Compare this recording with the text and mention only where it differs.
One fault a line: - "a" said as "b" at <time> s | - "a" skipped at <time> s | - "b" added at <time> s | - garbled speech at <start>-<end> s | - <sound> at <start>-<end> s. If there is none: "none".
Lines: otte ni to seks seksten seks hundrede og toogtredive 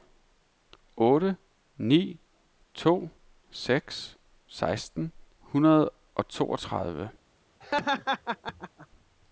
- "seks" skipped at 5.1 s
- laugh at 7.6-8.9 s